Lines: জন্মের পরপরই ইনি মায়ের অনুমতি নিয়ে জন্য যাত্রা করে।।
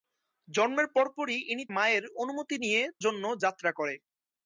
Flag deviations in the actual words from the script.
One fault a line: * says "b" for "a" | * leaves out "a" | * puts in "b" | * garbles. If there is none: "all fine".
all fine